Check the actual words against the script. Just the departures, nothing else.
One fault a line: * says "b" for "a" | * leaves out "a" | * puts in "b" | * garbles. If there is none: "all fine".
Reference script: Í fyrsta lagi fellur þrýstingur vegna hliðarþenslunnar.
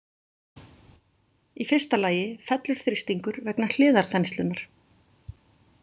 all fine